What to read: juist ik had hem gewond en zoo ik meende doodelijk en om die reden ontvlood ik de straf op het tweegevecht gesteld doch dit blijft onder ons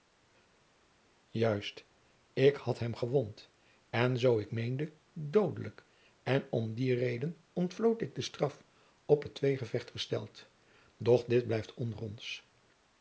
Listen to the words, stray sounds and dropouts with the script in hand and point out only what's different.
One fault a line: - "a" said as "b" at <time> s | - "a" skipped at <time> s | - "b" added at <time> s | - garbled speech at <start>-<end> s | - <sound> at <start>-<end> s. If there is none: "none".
none